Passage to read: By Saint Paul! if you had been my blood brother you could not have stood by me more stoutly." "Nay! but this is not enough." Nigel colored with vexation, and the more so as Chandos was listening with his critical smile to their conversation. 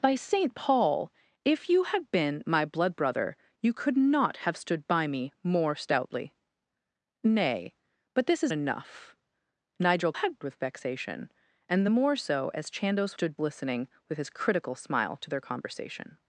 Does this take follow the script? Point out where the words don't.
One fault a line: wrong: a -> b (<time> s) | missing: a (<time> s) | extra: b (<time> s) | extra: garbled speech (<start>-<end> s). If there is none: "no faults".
missing: not (8.5 s)
wrong: colored -> had (10.1 s)
wrong: was -> stood (13.1 s)